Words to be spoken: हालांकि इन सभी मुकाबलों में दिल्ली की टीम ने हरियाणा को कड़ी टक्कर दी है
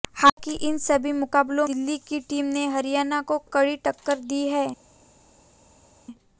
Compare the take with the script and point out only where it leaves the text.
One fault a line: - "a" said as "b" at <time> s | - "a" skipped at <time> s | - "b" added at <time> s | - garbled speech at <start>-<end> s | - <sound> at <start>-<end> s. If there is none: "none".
- "में" skipped at 1.7 s